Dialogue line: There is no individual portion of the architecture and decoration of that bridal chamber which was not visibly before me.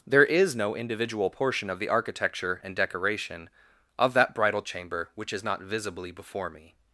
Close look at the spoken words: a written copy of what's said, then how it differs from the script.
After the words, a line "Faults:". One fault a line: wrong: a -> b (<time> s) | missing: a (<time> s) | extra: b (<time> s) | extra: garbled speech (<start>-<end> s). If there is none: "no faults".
There is no individual portion of the architecture and decoration of that bridal chamber which is not visibly before me.
Faults:
wrong: was -> is (5.3 s)